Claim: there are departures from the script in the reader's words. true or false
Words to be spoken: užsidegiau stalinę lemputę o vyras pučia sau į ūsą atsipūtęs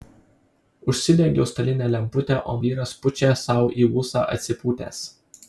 false